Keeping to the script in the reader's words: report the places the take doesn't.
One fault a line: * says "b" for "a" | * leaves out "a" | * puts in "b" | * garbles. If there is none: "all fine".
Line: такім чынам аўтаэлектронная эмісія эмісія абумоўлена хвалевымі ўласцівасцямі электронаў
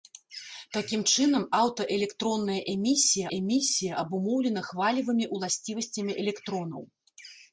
all fine